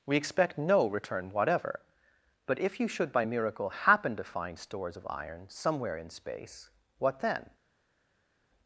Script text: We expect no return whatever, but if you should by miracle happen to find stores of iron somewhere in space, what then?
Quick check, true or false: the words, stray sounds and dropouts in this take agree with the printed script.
true